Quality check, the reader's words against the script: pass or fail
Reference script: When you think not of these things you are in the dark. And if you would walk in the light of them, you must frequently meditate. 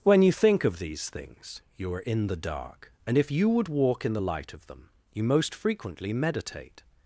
fail